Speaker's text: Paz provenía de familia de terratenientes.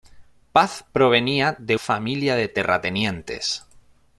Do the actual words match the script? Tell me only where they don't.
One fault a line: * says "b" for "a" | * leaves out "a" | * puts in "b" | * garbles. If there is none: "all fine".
all fine